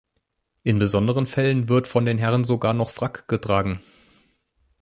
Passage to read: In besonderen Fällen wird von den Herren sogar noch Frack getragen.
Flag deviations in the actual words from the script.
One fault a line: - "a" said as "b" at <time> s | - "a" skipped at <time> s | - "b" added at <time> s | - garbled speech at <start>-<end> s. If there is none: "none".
none